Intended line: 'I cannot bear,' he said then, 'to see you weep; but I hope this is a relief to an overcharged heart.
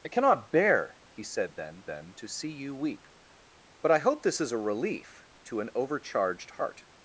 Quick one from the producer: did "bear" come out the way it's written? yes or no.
yes